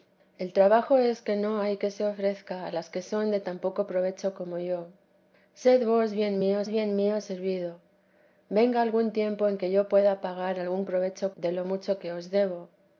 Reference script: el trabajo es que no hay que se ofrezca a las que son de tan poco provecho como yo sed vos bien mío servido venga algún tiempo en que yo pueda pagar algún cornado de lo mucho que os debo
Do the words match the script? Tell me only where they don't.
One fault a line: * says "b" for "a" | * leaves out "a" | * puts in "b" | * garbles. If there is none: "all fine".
* puts in "bien mío"
* says "provecho" for "cornado"